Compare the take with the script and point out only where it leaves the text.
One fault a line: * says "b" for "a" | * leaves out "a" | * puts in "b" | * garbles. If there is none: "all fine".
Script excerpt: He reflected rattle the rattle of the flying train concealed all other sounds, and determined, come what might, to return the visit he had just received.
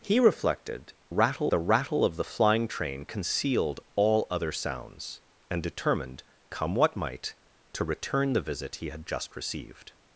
all fine